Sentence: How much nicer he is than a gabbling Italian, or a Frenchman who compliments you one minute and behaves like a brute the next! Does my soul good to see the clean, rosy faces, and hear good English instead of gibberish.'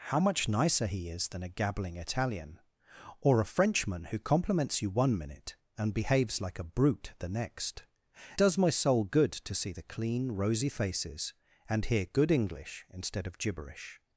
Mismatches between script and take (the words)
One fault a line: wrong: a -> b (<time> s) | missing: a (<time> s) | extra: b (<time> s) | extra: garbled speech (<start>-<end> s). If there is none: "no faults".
no faults